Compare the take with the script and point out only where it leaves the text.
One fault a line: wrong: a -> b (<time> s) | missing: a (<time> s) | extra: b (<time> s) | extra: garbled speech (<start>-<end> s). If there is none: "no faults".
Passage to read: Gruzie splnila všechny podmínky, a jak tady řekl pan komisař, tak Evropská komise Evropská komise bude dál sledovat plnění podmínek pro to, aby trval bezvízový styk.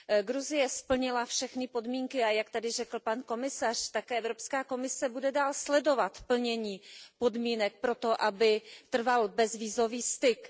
missing: Evropská komise (5.1 s)